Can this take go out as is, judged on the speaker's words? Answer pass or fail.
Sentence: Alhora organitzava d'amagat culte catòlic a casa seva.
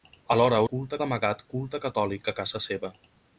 fail